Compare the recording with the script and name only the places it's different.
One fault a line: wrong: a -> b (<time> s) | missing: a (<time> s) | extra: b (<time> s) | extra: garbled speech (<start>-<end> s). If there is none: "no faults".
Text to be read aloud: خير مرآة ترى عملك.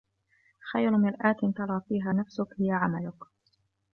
extra: فيها نفسك هي (1.9 s)